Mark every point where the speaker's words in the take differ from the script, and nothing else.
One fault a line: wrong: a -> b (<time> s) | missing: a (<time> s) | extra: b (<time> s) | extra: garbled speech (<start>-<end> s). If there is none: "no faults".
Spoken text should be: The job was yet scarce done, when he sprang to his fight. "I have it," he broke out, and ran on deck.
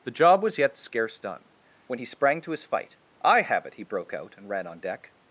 no faults